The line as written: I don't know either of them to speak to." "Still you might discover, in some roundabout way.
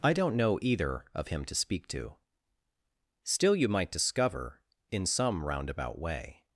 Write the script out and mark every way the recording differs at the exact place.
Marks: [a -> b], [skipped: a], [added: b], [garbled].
I don't know either of [them -> him] to speak to." "Still you might discover, in some roundabout way.